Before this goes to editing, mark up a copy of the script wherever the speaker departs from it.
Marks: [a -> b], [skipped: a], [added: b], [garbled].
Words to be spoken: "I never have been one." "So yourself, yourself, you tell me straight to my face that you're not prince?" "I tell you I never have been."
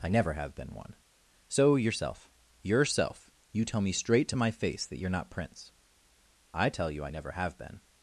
"I never have been one." "So yourself, yourself, you tell me straight to my face that you're not prince?" "I tell you I never have been."